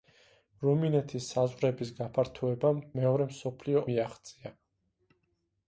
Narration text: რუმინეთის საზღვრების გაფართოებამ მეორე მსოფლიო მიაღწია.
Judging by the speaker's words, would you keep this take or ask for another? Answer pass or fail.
pass